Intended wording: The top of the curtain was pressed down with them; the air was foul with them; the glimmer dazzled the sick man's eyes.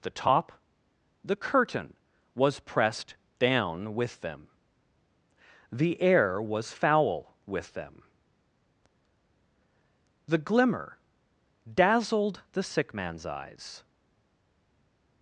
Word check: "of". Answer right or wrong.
wrong